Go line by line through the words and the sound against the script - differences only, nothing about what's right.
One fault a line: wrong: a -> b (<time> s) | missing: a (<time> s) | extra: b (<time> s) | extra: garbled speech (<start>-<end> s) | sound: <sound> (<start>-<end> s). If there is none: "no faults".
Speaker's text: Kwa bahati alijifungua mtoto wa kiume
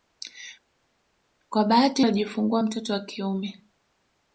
no faults